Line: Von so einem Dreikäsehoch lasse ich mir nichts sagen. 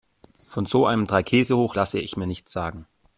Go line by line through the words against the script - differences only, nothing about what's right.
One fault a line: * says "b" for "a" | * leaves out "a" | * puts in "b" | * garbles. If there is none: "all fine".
all fine